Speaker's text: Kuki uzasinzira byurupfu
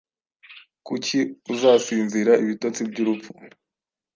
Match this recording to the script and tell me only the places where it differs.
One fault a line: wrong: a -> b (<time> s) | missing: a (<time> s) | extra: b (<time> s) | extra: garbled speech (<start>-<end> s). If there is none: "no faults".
extra: ibitotsi (2.4 s)